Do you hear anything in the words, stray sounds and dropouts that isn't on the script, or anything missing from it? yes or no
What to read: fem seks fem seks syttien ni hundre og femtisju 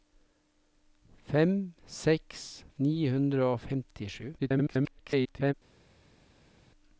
yes